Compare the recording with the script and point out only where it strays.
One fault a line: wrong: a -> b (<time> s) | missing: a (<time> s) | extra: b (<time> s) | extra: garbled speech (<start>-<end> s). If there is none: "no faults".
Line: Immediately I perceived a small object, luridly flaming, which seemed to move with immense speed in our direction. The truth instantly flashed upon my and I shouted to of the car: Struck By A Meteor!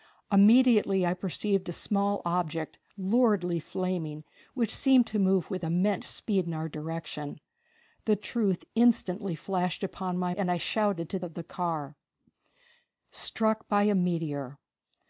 no faults